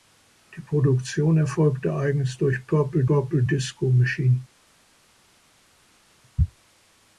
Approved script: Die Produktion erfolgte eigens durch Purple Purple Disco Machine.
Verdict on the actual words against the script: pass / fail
pass